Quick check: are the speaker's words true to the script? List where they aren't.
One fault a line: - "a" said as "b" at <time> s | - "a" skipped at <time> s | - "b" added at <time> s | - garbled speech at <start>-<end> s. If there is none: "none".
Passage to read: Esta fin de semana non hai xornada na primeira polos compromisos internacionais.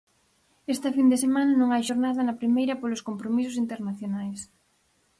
none